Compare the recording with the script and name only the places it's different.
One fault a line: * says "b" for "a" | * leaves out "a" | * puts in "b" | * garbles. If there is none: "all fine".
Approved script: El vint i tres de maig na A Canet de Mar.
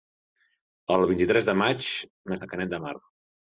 all fine